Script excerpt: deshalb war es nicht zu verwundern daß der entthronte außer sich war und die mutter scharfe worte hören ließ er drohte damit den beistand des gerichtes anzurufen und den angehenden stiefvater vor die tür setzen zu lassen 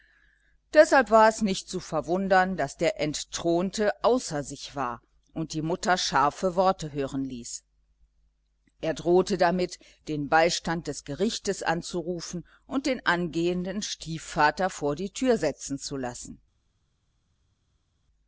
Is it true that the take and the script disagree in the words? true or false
false